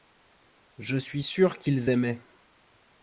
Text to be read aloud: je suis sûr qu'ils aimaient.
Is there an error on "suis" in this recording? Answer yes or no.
no